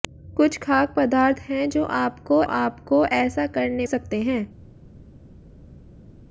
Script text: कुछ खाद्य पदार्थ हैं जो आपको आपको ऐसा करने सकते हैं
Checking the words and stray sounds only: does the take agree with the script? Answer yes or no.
yes